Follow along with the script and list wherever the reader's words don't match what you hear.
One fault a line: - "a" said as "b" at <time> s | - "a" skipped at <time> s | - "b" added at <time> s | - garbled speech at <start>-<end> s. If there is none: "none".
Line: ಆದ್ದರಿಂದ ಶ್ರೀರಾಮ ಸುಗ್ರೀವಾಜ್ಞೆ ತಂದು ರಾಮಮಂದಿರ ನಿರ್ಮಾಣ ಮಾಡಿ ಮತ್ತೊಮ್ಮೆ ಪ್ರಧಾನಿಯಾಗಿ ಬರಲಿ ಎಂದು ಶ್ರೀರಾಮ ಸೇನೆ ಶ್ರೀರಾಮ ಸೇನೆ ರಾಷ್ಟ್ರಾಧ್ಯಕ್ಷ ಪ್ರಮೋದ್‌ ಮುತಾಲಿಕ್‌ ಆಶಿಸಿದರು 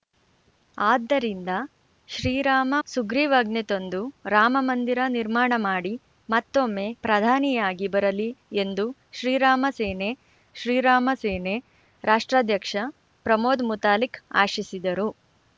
none